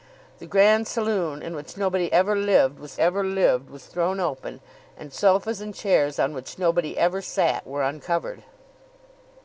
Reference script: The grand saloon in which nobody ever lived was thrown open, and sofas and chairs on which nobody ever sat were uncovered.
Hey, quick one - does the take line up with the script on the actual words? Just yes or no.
no